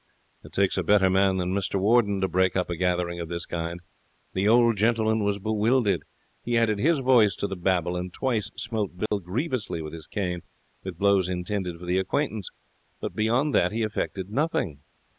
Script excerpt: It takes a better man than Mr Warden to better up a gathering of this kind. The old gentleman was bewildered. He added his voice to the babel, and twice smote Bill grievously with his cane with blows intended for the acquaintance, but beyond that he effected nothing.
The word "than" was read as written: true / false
true